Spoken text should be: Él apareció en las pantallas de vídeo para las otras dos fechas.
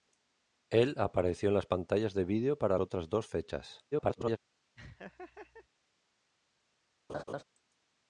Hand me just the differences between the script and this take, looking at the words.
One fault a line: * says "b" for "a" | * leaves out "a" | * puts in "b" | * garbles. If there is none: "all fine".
* leaves out "las"
* garbles